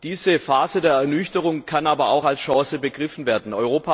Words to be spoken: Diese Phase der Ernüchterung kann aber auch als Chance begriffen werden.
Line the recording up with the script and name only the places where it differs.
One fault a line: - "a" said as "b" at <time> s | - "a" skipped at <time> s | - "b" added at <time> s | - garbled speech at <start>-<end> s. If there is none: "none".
none